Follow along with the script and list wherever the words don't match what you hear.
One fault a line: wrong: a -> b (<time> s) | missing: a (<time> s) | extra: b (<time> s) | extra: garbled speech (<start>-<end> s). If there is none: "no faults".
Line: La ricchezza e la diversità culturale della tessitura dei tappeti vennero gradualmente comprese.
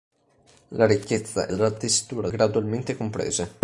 missing: la diversità culturale (1.5 s)
missing: dei tappeti vennero (2.3 s)